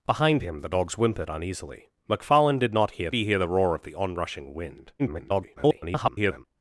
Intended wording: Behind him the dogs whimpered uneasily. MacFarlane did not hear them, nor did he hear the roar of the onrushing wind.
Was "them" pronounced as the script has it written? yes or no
no